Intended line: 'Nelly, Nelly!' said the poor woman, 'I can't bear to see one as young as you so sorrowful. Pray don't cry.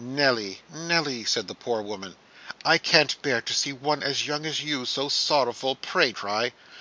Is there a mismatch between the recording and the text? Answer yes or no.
yes